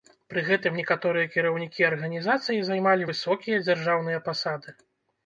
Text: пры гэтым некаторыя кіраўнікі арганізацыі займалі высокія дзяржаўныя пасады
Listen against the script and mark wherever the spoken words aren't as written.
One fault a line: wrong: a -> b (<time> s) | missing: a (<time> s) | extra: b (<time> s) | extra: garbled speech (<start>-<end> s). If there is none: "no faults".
no faults